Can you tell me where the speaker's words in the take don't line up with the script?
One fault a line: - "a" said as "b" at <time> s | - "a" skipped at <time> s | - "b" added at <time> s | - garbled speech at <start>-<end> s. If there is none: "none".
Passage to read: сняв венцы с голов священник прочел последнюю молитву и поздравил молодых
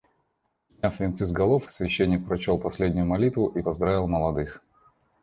none